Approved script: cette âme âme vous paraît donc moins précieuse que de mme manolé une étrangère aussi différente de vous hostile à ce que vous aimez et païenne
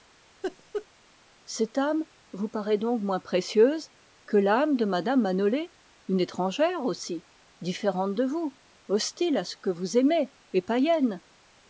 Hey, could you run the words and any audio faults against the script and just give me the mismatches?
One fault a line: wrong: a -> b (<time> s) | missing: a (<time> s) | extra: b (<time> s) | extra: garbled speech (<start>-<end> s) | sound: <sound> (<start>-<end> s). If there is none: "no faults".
sound: laugh (0.4-0.9 s)
missing: âme (2.0 s)
extra: l'âme (4.4 s)